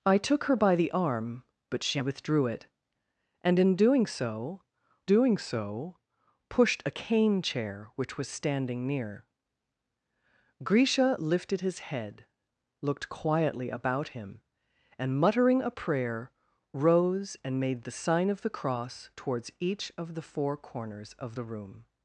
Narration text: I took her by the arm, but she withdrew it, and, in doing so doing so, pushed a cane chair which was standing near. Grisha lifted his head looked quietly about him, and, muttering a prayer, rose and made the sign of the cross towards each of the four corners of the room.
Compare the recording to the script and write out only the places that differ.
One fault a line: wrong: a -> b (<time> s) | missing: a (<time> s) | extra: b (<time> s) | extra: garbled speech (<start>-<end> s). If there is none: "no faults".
no faults